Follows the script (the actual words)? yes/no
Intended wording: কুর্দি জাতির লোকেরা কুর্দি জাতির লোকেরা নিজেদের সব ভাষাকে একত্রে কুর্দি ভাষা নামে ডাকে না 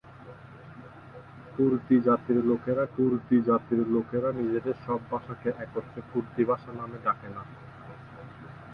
yes